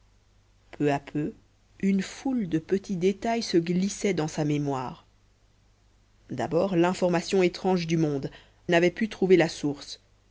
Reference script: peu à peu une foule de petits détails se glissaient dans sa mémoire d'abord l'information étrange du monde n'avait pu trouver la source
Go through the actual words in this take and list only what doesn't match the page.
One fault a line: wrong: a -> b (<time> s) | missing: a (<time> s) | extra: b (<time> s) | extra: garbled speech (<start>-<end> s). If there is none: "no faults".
no faults